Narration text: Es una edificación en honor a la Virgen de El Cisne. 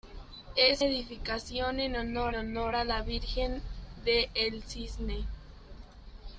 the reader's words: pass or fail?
fail